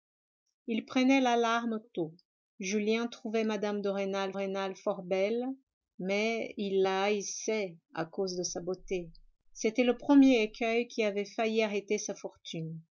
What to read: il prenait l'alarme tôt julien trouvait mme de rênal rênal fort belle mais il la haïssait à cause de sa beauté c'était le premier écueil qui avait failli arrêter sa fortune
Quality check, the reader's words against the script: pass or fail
pass